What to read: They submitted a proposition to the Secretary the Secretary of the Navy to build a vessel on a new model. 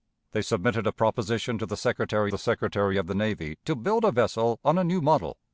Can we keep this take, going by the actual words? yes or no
yes